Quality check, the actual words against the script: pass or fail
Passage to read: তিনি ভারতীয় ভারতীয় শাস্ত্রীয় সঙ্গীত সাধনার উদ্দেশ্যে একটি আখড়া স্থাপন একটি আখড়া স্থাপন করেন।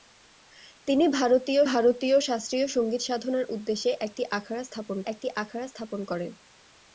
pass